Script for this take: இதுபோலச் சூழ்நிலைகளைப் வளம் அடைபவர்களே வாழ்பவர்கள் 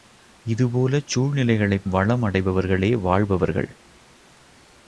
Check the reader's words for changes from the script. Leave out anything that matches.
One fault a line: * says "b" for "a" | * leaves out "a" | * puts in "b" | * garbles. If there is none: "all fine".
all fine